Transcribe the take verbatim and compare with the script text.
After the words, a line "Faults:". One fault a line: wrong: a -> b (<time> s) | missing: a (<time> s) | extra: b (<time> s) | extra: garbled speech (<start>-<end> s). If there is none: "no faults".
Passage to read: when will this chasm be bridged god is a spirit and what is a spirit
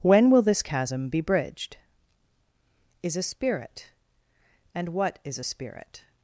when will this chasm be bridged is a spirit and what is a spirit
Faults:
missing: god (1.8 s)